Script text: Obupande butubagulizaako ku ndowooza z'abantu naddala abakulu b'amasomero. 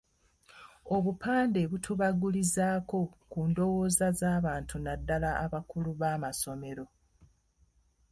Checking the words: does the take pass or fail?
pass